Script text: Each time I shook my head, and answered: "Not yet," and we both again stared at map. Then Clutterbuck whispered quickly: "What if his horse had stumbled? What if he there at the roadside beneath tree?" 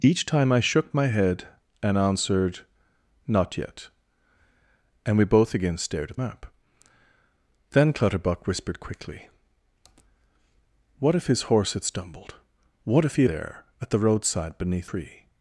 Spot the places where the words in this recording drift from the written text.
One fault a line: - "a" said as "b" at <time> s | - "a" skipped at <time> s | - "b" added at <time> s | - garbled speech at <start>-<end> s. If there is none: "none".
none